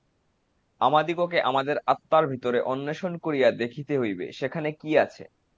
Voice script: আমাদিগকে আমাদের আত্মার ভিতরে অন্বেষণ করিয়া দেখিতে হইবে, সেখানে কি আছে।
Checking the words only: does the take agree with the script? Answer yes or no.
yes